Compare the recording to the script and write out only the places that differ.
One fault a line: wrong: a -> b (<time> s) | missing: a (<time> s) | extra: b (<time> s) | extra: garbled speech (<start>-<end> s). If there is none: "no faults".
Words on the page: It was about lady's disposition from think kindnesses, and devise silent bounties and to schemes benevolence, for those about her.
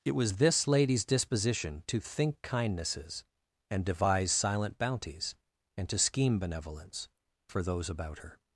wrong: about -> this (0.4 s)
wrong: from -> to (1.9 s)
wrong: schemes -> scheme (6.0 s)